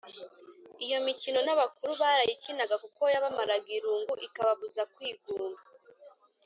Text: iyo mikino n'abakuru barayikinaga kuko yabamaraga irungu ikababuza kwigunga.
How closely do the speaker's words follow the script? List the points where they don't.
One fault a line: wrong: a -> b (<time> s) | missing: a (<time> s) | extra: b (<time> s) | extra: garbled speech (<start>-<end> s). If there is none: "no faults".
no faults